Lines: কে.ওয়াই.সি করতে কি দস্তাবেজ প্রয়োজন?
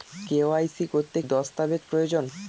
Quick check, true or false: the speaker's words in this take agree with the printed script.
false